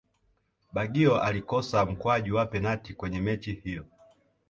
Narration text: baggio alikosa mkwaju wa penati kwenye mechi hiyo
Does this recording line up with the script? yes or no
yes